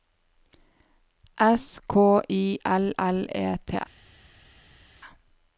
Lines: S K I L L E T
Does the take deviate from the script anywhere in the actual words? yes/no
no